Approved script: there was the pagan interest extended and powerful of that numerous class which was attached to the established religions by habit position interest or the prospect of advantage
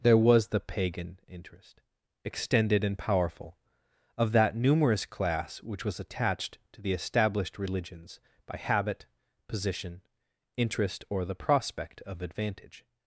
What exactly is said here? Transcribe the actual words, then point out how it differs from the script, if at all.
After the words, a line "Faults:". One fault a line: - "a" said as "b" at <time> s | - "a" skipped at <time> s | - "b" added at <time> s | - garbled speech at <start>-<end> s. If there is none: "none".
there was the pagan interest extended and powerful of that numerous class which was attached to the established religions by habit position interest or the prospect of advantage
Faults:
none